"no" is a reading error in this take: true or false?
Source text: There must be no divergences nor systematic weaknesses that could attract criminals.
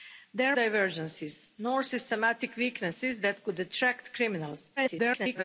true